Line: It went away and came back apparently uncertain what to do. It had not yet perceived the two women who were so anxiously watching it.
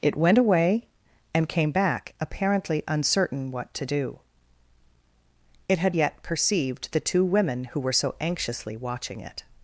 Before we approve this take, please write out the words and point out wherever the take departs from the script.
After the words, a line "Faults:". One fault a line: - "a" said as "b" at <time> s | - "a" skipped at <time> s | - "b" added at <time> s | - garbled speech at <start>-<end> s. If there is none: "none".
It went away and came back apparently uncertain what to do. It had yet perceived the two women who were so anxiously watching it.
Faults:
- "not" skipped at 6.0 s